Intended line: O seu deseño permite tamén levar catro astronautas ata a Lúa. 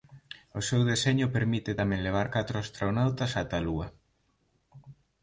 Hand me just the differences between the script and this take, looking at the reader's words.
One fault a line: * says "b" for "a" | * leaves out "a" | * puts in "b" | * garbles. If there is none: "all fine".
all fine